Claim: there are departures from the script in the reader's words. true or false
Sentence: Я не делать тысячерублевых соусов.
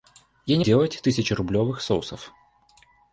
false